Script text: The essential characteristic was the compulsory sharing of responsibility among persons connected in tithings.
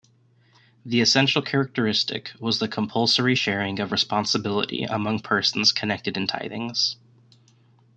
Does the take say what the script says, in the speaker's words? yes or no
yes